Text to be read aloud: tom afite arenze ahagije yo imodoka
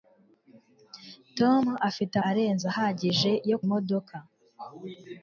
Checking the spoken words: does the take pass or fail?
pass